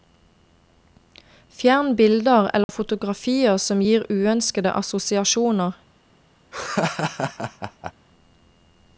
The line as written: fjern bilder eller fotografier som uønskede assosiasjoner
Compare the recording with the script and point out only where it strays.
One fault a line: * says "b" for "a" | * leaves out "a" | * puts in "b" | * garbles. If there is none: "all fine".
* puts in "gir"